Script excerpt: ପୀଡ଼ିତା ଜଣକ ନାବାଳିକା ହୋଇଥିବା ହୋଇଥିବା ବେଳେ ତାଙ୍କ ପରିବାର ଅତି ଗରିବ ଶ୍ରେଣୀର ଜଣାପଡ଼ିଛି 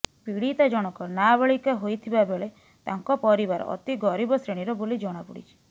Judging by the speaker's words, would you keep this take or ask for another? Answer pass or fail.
fail